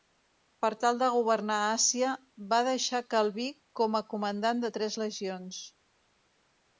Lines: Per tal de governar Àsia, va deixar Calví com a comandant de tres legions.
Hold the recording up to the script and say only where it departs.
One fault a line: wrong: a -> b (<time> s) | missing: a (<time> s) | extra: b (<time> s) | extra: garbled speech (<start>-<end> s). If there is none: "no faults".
no faults